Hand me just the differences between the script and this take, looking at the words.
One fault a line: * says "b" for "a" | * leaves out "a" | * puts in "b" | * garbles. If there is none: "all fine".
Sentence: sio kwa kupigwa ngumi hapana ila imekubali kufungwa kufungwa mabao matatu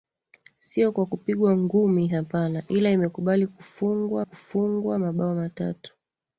all fine